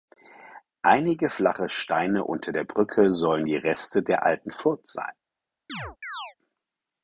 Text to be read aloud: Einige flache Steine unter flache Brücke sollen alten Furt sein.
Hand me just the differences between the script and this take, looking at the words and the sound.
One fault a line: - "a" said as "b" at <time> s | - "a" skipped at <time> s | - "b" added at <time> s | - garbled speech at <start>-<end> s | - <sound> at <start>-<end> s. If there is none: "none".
- "flache" said as "der" at 2.5 s
- "die Reste der" added at 3.4 s
- chirp at 5.7-6.4 s